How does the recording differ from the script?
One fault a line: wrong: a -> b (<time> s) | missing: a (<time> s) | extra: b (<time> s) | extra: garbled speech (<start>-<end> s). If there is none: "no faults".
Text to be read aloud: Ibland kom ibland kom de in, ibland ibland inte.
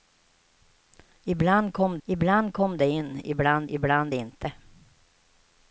no faults